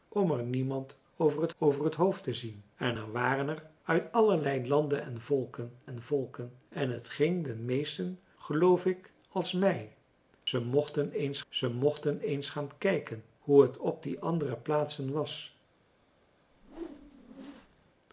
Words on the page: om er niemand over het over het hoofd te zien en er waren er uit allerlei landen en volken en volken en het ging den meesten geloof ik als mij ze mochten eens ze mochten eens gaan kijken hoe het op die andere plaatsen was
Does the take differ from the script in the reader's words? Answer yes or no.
no